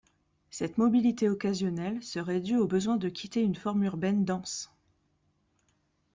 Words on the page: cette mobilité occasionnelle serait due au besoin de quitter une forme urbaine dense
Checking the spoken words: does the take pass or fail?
pass